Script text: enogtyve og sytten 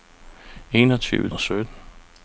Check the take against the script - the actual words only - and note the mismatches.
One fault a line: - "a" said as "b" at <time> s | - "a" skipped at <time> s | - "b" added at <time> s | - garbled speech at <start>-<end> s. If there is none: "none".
none